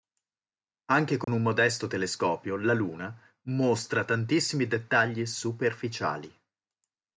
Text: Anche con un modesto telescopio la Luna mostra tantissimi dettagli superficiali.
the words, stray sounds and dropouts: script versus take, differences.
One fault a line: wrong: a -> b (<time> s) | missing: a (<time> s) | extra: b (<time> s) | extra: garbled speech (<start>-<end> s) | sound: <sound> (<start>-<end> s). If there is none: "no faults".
sound: dropout (1.2-1.3 s)